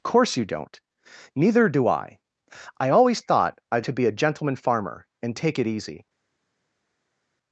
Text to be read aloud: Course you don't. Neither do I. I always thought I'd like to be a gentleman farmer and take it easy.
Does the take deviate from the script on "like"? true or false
true